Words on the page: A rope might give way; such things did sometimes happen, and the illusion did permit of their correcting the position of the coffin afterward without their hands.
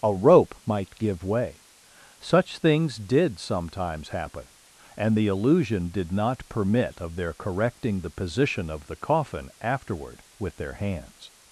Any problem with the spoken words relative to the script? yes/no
yes